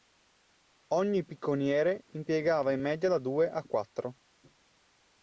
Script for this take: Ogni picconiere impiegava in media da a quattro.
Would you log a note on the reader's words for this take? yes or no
yes